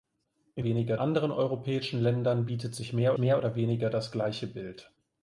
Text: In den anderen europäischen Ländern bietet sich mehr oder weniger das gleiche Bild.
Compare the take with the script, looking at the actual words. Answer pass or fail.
fail